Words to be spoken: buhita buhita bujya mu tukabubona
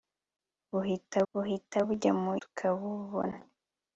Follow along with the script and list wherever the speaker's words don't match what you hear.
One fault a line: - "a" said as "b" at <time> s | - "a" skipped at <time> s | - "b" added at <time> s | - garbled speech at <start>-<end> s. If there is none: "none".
none